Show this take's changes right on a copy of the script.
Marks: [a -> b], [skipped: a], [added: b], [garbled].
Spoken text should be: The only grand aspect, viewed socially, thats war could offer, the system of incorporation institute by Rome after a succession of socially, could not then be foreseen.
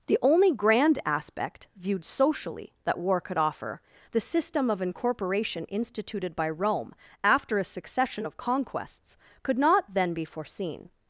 The only grand aspect, viewed socially, [thats -> that] war could offer, the system of incorporation [institute -> instituted] by Rome after a succession of [socially, -> conquests] could not then be foreseen.